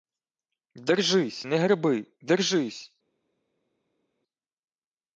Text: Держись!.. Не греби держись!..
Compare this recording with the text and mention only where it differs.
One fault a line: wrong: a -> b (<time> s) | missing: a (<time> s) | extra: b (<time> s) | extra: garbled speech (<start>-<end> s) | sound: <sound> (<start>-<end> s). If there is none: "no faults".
no faults